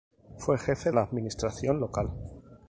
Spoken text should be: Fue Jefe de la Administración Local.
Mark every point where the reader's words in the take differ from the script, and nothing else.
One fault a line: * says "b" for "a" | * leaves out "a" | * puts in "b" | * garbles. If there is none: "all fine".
* leaves out "de"